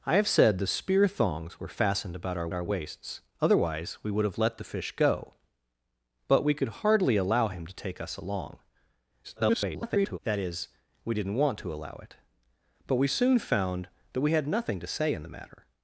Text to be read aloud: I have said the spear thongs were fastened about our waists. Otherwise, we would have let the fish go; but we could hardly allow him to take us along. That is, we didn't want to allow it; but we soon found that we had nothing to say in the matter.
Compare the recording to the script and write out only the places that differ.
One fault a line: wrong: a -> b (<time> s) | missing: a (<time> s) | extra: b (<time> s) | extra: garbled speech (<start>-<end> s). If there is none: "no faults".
extra: our (2.5 s)
extra: garbled speech (9.2-10.2 s)